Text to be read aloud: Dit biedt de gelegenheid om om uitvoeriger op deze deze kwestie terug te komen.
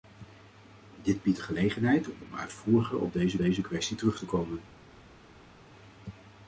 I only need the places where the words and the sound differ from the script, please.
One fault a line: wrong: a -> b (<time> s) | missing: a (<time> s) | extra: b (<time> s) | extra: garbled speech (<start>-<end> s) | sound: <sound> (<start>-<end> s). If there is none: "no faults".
no faults